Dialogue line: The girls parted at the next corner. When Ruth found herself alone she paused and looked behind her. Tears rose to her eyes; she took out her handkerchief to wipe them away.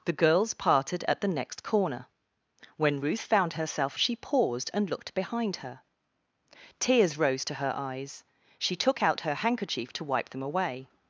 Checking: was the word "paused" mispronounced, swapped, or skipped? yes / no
no